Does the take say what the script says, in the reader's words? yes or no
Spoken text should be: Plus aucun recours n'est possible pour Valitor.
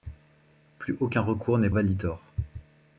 no